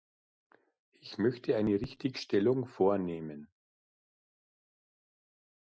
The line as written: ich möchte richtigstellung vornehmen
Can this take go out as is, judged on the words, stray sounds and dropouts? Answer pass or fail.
fail